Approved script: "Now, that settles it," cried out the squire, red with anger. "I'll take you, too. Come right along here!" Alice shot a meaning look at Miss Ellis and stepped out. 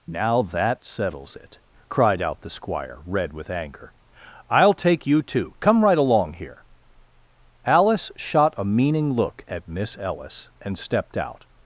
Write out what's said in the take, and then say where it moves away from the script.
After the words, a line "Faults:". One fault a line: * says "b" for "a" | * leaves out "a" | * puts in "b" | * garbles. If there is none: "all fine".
"Now, that settles it," cried out the squire, red with anger. "I'll take you, too. Come right along here!" Alice shot a meaning look at Miss Ellis and stepped out.
Faults:
all fine